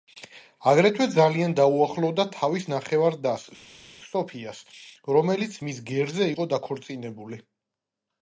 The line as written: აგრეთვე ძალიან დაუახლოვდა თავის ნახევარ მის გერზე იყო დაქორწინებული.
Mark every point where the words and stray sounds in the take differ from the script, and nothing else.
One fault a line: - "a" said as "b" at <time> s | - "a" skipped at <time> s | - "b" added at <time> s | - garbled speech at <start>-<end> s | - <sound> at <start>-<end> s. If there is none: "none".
- "დას სოფიას რომელიც" added at 3.3 s